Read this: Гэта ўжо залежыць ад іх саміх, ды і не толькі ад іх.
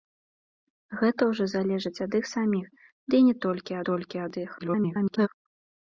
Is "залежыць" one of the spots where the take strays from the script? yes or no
no